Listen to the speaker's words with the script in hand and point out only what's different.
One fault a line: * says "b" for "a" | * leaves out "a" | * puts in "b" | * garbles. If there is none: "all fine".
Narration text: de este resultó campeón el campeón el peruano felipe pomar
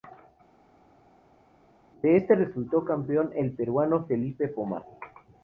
* leaves out "campeón el"